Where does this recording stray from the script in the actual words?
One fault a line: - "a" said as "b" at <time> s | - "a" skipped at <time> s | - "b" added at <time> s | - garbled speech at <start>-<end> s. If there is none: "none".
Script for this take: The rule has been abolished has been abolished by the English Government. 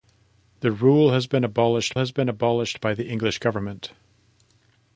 none